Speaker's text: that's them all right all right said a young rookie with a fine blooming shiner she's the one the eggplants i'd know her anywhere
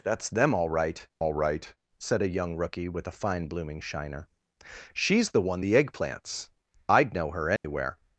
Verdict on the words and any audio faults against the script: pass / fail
fail